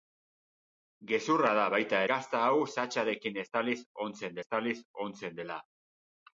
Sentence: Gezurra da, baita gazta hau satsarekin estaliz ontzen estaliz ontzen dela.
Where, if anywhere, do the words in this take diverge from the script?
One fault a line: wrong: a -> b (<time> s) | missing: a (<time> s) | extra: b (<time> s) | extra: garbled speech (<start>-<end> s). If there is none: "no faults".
no faults